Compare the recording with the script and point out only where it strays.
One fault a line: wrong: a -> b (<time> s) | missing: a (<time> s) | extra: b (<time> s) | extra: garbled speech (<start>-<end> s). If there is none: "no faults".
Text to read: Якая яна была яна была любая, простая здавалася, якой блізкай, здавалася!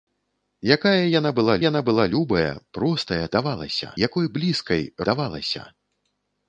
no faults